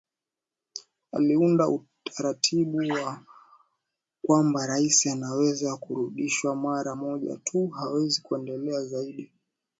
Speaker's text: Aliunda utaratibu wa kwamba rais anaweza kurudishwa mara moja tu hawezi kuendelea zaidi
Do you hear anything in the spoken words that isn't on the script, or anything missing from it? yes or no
no